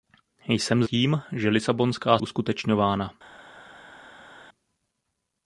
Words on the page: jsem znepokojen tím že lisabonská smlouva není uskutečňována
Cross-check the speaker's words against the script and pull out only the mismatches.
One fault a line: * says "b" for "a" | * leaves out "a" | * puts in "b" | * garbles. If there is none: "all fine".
* leaves out "znepokojen"
* leaves out "smlouva není"